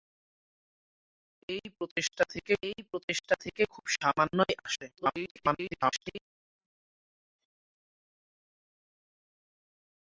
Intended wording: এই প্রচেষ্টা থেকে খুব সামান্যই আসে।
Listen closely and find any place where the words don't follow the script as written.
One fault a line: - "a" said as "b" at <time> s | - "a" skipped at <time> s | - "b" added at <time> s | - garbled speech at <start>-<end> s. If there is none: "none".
- "এই প্রচেষ্টা থেকে" added at 2.6 s
- garbled speech at 4.9-6.2 s